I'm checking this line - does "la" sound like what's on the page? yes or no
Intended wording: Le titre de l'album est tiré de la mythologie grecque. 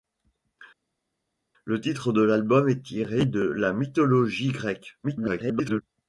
yes